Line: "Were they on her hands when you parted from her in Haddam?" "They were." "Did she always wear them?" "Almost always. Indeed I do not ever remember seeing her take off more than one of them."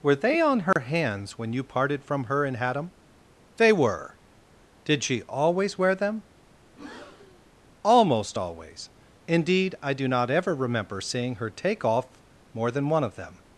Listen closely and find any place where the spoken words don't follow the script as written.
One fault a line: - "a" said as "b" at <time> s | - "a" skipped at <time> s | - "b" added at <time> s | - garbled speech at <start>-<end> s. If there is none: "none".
none